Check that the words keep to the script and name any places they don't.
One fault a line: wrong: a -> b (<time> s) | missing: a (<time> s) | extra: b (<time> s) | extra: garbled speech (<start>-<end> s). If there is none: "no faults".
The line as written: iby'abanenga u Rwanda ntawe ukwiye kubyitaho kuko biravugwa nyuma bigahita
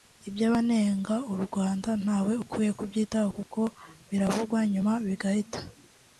no faults